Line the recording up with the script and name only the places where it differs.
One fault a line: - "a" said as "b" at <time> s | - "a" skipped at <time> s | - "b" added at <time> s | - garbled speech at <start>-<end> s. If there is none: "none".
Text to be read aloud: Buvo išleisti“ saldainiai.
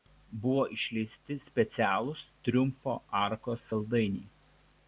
- "specialūs Triumfo arkos" added at 1.5 s